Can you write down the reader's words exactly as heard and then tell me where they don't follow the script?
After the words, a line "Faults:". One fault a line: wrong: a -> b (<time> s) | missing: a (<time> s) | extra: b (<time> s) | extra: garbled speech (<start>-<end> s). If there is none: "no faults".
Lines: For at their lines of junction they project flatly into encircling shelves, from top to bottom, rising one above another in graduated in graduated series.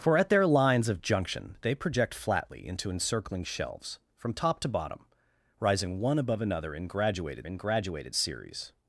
For at their lines of junction they project flatly into encircling shelves, from top to bottom, rising one above another in graduated in graduated series.
Faults:
no faults